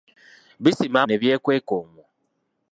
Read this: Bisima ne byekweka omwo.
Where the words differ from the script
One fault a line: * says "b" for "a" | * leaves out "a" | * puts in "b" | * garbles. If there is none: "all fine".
all fine